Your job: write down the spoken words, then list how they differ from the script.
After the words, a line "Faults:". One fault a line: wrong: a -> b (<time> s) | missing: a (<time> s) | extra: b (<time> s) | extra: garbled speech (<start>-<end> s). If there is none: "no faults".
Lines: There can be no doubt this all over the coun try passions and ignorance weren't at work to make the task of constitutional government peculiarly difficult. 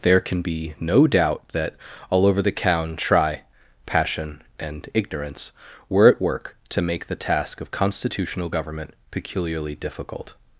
There can be no doubt that all over the coun try passion and ignorance were at work to make the task of constitutional government peculiarly difficult.
Faults:
wrong: this -> that (1.5 s)
wrong: passions -> passion (3.8 s)
wrong: weren't -> were (5.9 s)